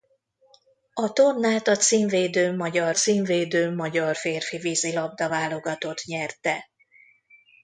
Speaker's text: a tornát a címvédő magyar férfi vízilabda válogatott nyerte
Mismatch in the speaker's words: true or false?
true